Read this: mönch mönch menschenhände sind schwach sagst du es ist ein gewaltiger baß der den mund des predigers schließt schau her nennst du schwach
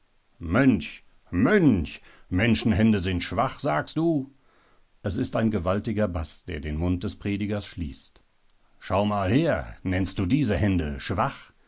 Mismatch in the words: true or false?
true